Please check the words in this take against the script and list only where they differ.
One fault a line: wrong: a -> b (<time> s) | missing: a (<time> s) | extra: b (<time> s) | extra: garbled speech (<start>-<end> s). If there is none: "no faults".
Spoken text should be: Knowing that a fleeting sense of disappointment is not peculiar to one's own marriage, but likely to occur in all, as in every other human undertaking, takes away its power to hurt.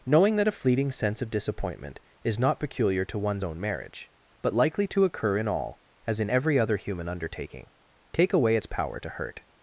wrong: takes -> take (8.1 s)